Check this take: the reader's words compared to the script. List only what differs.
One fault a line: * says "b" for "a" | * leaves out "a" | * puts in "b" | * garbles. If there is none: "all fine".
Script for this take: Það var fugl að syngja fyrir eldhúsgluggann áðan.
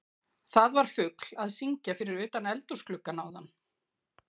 * puts in "utan"